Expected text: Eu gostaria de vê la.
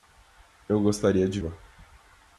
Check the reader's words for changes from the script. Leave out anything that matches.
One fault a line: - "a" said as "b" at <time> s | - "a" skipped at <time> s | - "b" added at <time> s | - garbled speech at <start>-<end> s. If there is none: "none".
- "vê" skipped at 1.4 s